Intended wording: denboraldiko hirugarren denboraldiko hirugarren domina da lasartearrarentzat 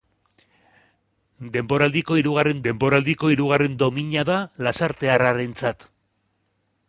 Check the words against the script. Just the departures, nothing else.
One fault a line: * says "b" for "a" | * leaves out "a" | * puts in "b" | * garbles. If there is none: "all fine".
all fine